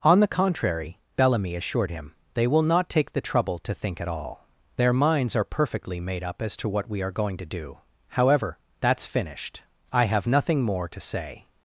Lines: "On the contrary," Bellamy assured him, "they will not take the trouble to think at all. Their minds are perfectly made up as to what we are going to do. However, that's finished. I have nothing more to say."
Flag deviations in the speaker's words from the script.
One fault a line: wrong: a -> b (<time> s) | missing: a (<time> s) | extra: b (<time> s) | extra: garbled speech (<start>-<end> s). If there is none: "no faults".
no faults